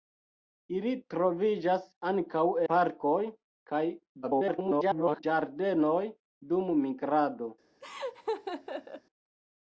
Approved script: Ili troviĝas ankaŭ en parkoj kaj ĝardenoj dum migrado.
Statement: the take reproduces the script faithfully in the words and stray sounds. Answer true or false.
false